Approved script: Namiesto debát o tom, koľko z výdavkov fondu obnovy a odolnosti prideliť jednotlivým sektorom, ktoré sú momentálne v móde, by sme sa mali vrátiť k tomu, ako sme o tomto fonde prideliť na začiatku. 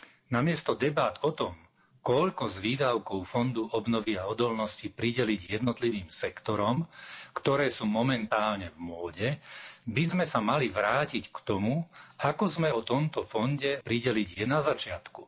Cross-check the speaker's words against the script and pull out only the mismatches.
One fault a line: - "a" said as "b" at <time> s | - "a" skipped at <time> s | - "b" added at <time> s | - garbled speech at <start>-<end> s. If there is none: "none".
none